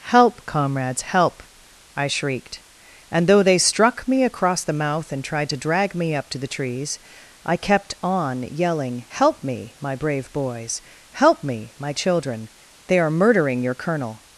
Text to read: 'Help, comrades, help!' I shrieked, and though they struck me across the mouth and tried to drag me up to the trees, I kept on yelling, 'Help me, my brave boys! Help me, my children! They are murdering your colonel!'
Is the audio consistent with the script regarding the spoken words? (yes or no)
yes